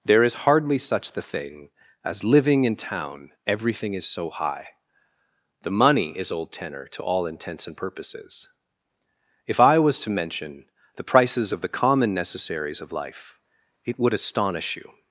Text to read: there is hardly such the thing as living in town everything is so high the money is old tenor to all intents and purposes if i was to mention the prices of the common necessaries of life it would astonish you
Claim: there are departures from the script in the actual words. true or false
false